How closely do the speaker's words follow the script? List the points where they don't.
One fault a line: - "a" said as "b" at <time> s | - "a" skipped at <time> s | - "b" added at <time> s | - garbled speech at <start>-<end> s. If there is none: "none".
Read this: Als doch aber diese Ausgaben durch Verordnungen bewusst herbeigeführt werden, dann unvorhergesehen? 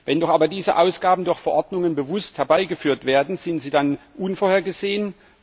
- "Als" said as "Wenn" at 0.1 s
- "sind sie" added at 3.4 s